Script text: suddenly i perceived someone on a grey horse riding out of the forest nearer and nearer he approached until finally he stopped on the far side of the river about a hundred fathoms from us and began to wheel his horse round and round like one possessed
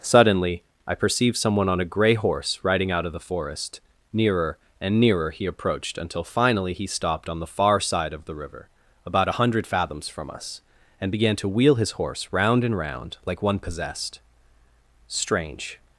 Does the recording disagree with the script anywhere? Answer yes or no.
yes